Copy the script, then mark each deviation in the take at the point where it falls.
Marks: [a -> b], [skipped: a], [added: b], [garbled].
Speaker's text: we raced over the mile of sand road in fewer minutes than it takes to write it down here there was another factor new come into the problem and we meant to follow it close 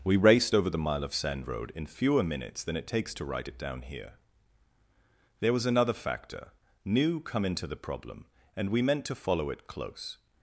we raced over the mile of sand road in fewer minutes than it takes to write it down here there was another factor new come into the problem and we meant to follow it close